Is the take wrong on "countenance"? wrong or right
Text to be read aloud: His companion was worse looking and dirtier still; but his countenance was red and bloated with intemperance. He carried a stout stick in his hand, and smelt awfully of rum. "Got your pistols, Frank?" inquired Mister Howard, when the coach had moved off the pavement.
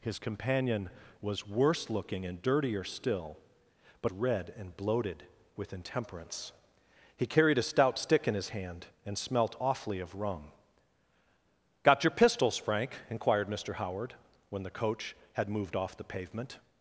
wrong